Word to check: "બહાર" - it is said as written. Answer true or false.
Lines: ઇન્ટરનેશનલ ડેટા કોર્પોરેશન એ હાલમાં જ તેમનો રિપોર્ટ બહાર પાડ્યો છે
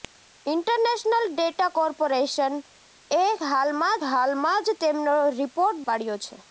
false